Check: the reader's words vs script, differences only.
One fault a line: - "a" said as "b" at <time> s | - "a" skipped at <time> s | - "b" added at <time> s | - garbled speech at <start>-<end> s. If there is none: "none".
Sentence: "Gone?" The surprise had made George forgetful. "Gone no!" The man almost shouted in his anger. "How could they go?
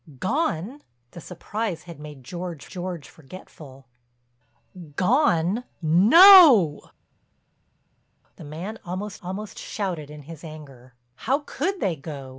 - "George" added at 2.7 s
- "almost" added at 9.2 s